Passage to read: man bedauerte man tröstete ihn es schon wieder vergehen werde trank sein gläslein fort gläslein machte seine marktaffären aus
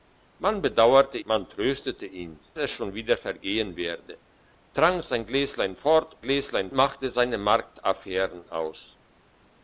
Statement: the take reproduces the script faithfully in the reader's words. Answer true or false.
true